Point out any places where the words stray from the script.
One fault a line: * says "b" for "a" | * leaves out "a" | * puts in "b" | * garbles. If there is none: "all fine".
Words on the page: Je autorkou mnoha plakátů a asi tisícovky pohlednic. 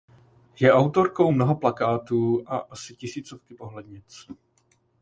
all fine